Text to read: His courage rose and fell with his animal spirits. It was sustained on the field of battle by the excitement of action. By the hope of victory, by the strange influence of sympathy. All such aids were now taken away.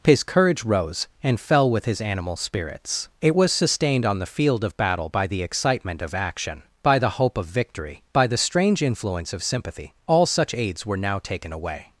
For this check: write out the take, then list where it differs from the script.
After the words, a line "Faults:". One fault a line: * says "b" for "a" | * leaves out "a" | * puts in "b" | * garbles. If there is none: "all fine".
His courage rose and fell with his animal spirits. It was sustained on the field of battle by the excitement of action. By the hope of victory, by the strange influence of sympathy. All such aids were now taken away.
Faults:
all fine